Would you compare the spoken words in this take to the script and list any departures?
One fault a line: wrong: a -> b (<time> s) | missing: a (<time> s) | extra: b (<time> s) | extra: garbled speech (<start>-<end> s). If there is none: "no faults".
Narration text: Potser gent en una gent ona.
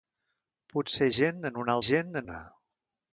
no faults